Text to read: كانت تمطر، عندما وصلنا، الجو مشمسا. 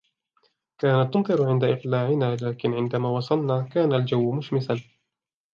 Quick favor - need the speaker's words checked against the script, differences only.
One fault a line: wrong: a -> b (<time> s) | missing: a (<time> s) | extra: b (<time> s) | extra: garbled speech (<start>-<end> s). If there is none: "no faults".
extra: عند إقلاعنا لكن (1.5 s)
extra: كان (3.6 s)